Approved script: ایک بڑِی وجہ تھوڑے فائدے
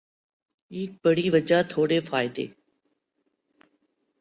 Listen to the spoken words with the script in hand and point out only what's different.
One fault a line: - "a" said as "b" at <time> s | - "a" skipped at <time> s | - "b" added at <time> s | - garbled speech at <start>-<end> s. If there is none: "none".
none